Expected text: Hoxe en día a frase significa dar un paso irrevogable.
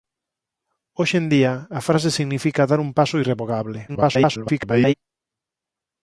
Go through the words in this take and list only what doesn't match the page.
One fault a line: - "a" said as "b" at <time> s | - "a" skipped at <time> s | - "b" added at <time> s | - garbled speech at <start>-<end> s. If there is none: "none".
- garbled speech at 3.9-4.9 s